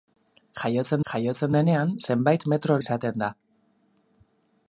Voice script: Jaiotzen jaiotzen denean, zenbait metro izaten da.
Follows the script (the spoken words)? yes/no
yes